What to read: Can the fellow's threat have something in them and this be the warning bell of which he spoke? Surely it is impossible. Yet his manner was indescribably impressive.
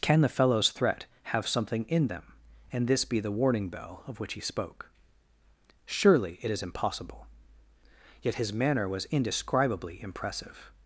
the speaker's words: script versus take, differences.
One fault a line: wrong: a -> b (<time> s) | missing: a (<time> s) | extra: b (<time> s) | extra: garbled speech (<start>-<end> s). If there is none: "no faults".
no faults